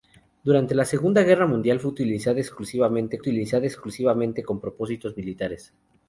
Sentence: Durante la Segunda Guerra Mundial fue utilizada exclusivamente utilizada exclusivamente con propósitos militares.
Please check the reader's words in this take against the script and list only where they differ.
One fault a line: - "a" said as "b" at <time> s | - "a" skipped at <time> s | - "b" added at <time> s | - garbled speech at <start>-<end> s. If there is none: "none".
none